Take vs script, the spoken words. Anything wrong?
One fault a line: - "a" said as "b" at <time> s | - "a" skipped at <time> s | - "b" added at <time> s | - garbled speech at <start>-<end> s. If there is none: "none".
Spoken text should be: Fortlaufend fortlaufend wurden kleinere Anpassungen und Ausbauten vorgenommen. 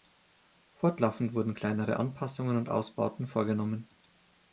- "fortlaufend" skipped at 1.4 s